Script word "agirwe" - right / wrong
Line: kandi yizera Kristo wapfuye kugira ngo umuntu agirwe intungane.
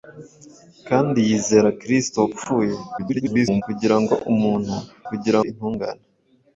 wrong